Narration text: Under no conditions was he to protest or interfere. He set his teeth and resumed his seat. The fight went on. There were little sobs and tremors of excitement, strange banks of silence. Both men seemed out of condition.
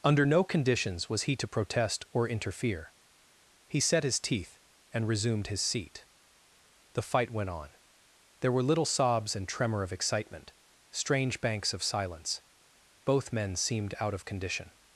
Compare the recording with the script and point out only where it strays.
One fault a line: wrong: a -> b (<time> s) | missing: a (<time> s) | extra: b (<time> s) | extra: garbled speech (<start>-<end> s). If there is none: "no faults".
wrong: tremors -> tremor (9.5 s)